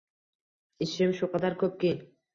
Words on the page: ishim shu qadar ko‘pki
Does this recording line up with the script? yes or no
yes